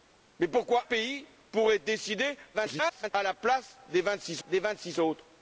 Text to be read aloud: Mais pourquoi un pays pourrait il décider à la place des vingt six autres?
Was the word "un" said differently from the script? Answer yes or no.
yes